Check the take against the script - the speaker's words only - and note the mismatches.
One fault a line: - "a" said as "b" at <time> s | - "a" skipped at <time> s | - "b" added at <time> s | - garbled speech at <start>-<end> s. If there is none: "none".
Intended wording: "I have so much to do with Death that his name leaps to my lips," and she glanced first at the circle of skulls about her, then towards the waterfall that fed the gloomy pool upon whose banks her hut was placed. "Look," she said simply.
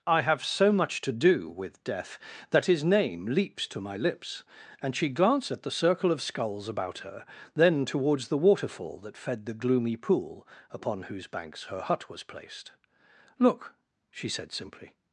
- "first" skipped at 5.5 s